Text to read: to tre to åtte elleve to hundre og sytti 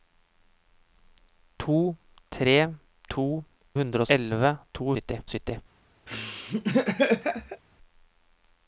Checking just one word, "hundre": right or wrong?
wrong